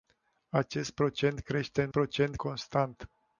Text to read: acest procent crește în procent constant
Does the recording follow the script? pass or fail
pass